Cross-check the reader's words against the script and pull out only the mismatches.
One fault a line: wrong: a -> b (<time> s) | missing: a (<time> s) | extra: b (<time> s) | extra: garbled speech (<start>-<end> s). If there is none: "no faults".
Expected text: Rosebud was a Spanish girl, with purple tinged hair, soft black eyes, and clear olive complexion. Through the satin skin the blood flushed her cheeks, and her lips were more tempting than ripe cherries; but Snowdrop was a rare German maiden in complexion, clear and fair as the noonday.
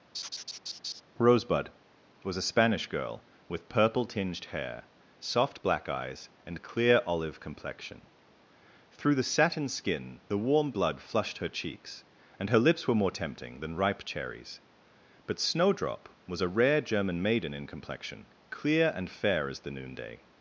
extra: warm (10.4 s)